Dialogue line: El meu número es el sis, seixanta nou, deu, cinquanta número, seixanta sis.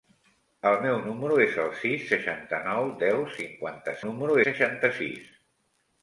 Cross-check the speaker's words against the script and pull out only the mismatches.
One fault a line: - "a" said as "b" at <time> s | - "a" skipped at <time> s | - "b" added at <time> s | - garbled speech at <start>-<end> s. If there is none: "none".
none